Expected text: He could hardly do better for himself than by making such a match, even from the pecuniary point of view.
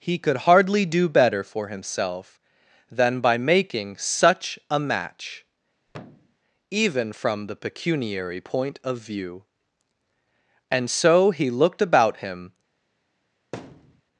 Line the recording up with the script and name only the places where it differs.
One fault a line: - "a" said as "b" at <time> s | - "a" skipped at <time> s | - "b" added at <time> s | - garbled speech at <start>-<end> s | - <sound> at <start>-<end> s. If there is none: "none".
- thud at 5.9-6.4 s
- "And so he looked about him" added at 10.7 s
- thud at 13.5-14.0 s